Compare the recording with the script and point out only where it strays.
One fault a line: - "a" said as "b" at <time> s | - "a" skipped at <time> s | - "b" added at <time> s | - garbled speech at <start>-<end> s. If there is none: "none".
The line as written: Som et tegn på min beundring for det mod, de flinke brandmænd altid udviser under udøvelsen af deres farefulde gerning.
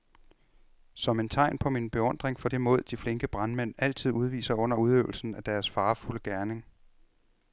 none